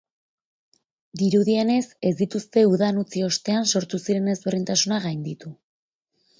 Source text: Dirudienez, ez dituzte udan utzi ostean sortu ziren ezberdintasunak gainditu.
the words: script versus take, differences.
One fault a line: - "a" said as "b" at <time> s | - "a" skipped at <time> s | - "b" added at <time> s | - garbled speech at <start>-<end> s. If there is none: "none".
none